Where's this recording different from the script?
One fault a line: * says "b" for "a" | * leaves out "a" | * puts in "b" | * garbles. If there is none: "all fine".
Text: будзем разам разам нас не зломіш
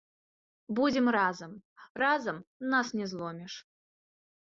all fine